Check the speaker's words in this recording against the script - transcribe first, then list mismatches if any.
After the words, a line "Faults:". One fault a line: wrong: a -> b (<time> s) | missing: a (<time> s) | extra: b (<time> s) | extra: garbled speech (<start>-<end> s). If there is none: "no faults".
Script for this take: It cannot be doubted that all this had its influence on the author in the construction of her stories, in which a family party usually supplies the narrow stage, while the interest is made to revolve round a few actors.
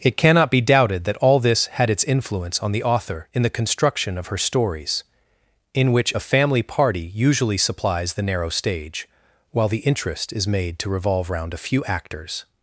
It cannot be doubted that all this had its influence on the author in the construction of her stories, in which a family party usually supplies the narrow stage, while the interest is made to revolve round a few actors.
Faults:
no faults